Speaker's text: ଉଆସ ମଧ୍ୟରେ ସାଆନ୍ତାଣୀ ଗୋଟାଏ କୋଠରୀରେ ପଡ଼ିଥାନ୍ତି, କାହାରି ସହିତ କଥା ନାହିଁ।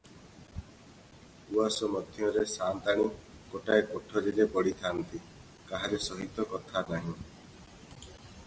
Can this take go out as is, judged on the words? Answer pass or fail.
pass